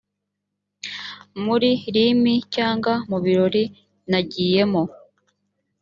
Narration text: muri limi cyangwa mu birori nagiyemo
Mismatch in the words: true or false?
false